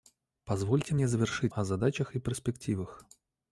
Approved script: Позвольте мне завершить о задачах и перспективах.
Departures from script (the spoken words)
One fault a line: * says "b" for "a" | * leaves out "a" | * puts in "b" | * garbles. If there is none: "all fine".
all fine